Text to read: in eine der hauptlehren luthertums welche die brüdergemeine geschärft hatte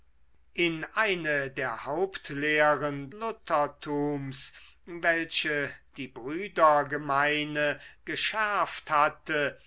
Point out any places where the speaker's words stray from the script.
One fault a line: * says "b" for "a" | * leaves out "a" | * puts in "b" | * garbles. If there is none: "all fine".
all fine